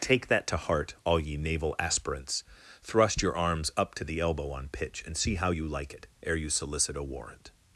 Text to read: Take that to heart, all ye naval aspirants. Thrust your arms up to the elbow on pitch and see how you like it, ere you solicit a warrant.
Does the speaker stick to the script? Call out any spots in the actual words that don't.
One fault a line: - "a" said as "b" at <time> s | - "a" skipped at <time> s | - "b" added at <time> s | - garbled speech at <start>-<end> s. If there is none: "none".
none